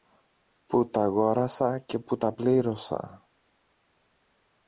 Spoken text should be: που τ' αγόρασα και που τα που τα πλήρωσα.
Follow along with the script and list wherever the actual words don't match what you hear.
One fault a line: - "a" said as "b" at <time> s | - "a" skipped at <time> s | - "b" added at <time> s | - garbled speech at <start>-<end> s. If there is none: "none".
- "που τα" skipped at 2.3 s